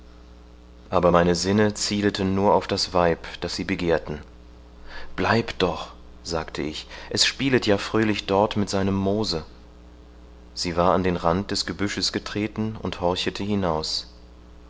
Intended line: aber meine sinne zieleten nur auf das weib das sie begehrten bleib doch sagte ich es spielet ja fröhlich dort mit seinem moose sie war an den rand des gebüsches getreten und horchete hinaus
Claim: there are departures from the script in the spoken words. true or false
false